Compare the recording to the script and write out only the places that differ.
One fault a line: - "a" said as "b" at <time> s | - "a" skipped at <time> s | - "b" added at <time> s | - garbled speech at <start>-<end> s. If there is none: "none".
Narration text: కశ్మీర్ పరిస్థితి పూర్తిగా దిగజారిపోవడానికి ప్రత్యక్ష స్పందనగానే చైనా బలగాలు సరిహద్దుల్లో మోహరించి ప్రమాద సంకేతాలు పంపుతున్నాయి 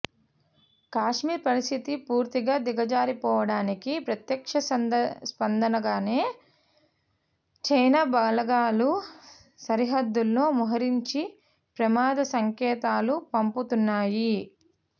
none